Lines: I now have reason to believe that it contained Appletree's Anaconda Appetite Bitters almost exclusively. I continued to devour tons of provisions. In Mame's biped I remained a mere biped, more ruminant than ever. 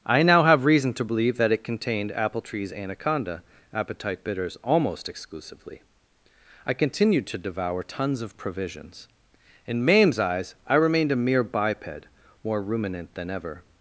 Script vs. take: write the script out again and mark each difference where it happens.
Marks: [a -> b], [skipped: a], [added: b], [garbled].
I now have reason to believe that it contained Appletree's Anaconda Appetite Bitters almost exclusively. I continued to devour tons of provisions. In Mame's [biped -> eyes] I remained a mere biped, more ruminant than ever.